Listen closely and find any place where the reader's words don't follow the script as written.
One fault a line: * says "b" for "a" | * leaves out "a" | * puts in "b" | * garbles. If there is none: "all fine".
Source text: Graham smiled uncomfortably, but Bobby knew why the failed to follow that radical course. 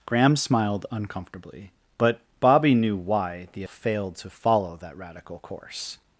all fine